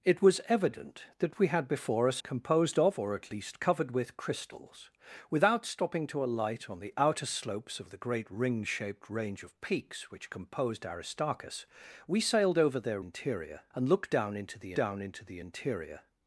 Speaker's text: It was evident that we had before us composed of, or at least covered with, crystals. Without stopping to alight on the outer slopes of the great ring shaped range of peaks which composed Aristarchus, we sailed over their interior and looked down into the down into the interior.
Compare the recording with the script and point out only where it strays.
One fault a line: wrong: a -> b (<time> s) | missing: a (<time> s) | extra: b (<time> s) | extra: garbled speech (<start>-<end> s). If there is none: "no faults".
no faults